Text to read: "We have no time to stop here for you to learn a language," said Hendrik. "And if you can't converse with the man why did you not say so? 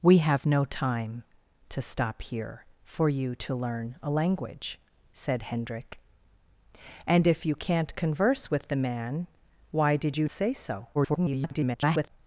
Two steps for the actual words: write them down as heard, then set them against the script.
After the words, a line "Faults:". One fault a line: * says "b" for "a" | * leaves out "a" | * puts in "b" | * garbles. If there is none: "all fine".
"We have no time to stop here for you to learn a language," said Hendrik. "And if you can't converse with the man why did you say so? [garbled]
Faults:
* leaves out "not"
* garbles